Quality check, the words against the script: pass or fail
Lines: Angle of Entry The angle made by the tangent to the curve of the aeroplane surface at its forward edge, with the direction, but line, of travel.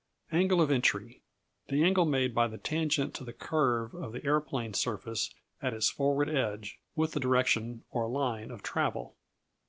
fail